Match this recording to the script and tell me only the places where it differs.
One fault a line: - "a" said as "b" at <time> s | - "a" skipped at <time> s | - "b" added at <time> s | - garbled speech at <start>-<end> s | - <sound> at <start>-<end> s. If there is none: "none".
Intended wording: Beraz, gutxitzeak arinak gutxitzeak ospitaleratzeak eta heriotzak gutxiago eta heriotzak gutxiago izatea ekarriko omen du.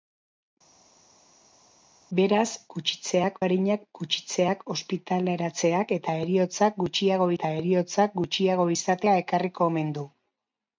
none